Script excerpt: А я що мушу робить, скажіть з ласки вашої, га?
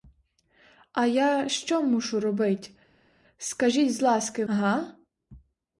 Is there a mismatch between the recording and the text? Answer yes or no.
yes